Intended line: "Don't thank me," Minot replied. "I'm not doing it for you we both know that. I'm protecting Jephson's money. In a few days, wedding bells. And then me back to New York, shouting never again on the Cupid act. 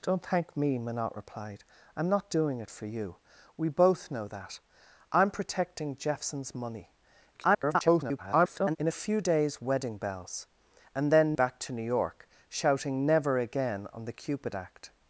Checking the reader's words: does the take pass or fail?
fail